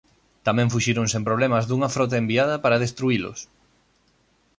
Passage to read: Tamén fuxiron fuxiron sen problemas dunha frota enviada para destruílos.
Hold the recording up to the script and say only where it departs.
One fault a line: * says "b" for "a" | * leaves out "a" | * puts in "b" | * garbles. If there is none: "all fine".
* leaves out "fuxiron"